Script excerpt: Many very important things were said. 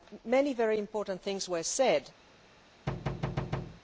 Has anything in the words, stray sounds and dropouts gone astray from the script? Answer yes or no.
yes